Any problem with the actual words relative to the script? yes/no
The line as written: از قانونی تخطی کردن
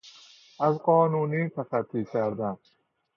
no